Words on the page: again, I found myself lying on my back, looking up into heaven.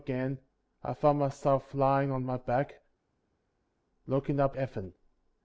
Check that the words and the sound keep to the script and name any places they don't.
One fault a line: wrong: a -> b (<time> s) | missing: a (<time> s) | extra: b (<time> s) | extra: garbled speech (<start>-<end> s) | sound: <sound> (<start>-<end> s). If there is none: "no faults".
missing: into (4.6 s)